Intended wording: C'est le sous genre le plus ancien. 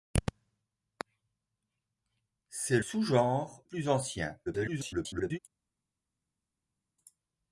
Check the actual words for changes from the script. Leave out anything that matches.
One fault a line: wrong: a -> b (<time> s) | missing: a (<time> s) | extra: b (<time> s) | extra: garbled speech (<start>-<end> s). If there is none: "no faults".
missing: le (2.8 s)
missing: le (3.6 s)
extra: garbled speech (4.5-5.4 s)